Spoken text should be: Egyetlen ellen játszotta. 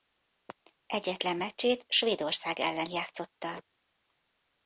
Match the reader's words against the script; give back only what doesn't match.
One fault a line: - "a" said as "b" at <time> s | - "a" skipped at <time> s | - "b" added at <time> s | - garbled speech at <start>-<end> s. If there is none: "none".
- "meccsét Svédország" added at 1.4 s